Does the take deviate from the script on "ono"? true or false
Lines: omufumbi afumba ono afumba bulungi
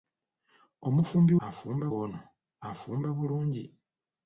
false